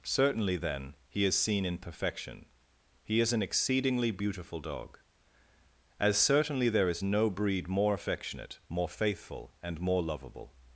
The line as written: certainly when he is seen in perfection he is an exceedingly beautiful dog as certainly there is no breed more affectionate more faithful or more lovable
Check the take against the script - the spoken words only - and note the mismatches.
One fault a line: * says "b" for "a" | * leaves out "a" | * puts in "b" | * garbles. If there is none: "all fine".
* says "then" for "when"
* says "and" for "or"